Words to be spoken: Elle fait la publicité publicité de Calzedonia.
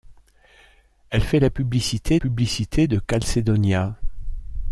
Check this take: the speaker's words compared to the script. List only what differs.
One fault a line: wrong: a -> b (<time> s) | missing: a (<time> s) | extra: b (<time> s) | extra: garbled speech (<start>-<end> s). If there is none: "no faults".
no faults